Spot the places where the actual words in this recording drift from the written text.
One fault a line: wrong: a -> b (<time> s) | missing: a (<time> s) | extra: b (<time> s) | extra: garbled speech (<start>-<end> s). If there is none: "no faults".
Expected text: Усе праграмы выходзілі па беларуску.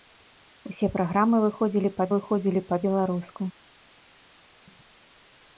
extra: выходзілі па (2.1 s)